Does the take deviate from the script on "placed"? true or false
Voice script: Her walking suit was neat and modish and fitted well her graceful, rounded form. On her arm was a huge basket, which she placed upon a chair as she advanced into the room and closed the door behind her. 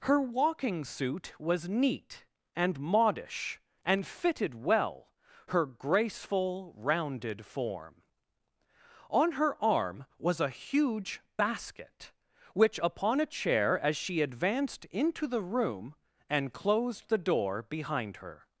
true